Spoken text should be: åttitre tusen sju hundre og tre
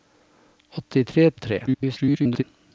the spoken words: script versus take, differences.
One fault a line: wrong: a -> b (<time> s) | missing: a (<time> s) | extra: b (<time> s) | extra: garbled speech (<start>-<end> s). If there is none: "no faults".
missing: tusen sju hundre (1.3 s)
extra: garbled speech (1.7-2.4 s)